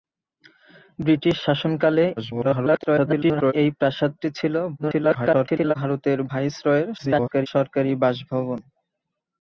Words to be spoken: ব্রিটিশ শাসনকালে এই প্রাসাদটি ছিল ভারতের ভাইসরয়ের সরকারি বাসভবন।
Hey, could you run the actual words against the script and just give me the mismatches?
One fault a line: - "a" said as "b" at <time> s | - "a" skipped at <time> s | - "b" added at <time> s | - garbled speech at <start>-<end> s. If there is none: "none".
- garbled speech at 2.2-3.5 s
- garbled speech at 4.8-5.7 s
- garbled speech at 7.0-7.5 s